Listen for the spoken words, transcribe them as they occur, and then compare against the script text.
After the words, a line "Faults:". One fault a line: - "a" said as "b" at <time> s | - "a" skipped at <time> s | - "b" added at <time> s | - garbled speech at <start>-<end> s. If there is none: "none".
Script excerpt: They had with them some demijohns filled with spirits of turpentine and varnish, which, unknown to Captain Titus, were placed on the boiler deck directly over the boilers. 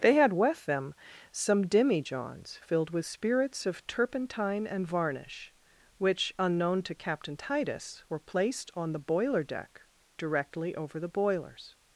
They had with them some demijohns filled with spirits of turpentine and varnish, which, unknown to Captain Titus, were placed on the boiler deck directly over the boilers.
Faults:
none